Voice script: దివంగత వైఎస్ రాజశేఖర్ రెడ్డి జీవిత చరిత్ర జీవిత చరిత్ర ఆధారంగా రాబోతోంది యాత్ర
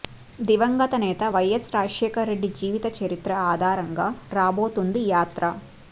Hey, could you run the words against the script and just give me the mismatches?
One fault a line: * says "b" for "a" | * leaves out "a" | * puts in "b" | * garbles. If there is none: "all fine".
* puts in "నేత"
* leaves out "జీవిత చరిత్ర"